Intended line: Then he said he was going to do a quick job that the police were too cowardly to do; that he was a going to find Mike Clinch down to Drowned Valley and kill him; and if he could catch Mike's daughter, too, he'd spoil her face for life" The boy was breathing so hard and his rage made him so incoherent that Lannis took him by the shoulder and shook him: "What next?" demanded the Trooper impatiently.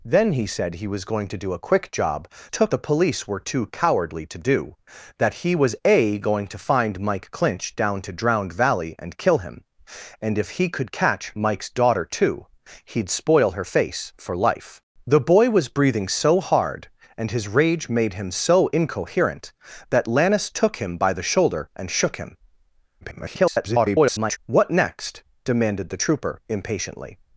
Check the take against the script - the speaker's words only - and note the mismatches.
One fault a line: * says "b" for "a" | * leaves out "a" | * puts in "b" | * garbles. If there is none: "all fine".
* says "took" for "that"
* garbles